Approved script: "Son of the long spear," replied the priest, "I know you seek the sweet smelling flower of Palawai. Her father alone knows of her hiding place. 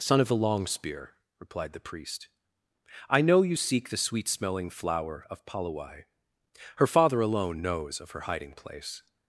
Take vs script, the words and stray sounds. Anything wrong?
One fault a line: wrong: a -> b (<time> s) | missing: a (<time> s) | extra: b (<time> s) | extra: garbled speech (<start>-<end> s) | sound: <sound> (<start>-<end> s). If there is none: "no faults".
no faults